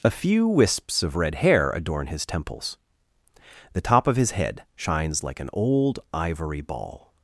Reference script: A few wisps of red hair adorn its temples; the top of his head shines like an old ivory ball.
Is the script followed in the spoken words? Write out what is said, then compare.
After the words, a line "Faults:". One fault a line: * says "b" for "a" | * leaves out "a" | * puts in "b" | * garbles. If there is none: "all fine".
A few wisps of red hair adorn his temples; the top of his head shines like an old ivory ball.
Faults:
* says "his" for "its"